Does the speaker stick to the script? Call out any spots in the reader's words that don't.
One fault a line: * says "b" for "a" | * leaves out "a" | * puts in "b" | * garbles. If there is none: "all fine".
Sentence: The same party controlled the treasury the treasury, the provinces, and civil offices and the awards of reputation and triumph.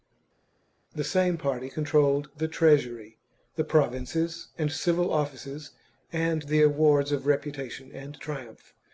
* leaves out "treasury the"